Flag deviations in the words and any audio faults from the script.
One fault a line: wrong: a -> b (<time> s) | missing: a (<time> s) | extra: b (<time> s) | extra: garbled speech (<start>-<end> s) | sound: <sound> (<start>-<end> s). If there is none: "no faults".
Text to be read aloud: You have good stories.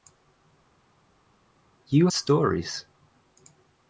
missing: have good (2.1 s)